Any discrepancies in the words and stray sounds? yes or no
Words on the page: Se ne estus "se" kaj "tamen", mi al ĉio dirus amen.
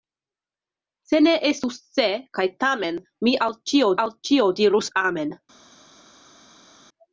yes